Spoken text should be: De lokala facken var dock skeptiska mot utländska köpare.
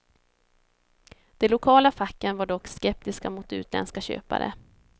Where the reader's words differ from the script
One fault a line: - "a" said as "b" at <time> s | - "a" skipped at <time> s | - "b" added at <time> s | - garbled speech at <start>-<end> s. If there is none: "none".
none